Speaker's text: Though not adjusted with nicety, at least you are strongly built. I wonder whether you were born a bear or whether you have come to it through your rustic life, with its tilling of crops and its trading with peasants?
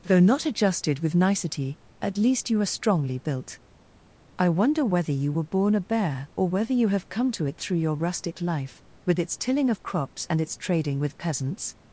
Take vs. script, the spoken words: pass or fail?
pass